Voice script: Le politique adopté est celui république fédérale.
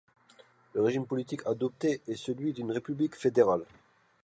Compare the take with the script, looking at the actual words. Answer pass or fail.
fail